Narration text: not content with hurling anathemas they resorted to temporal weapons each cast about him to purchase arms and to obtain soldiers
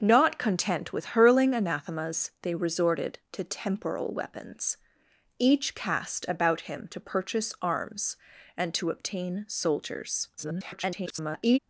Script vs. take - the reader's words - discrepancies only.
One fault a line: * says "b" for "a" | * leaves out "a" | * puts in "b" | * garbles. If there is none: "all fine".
* garbles